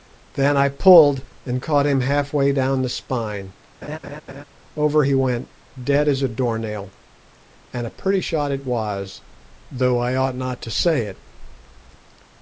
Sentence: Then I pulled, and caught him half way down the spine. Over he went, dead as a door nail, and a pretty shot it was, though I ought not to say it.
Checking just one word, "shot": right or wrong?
right